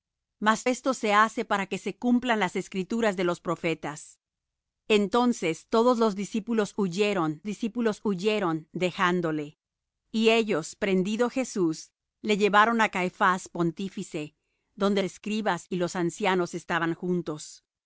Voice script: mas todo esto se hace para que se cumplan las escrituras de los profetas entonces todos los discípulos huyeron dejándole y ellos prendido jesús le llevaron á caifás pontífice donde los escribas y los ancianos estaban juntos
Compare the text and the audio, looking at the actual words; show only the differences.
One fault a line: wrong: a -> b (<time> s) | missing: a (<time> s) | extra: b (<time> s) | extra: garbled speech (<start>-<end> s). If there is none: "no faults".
missing: todo (0.7 s)
extra: discípulos huyeron (7.5 s)
missing: los (15.0 s)